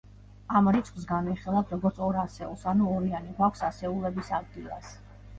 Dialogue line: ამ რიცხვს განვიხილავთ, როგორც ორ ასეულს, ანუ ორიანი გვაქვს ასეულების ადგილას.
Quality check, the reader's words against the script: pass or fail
pass